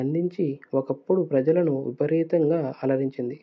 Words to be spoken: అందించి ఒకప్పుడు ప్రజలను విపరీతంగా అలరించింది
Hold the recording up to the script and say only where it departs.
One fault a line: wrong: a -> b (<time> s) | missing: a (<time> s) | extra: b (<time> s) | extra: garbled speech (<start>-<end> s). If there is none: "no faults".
no faults